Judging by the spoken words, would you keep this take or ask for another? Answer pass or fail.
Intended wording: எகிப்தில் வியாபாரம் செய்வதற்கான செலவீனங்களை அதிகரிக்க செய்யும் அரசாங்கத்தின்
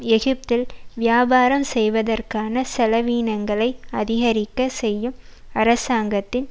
pass